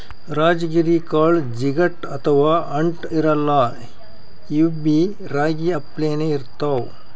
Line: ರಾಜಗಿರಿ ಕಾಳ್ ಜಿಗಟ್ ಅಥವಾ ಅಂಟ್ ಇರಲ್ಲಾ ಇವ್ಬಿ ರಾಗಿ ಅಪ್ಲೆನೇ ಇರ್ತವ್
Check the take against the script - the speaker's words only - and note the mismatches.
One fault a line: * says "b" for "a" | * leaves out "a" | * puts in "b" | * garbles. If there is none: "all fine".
all fine